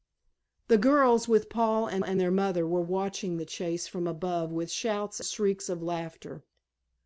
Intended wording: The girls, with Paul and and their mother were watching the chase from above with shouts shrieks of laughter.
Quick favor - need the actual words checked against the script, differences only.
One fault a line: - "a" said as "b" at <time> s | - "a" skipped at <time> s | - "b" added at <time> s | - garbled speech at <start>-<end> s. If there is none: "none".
none